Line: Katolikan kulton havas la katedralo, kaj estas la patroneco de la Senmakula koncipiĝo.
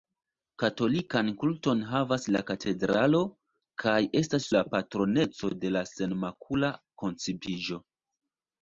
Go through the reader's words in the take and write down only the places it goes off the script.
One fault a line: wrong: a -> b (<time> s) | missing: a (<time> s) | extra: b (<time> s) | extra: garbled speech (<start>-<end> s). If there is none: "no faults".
no faults